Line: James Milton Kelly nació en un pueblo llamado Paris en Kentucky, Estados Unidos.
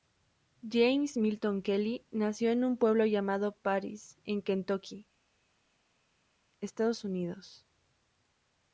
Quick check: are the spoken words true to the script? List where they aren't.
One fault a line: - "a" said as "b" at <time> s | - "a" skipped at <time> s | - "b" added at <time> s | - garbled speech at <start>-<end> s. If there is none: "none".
none